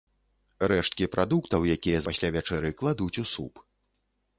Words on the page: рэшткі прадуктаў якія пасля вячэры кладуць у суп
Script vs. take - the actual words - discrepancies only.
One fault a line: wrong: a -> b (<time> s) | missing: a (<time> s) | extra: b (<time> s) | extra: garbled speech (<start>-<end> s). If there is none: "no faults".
no faults